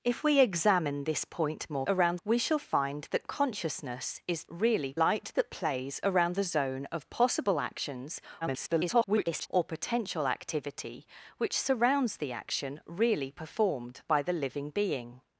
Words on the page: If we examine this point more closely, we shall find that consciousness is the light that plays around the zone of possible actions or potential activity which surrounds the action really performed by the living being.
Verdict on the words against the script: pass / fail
fail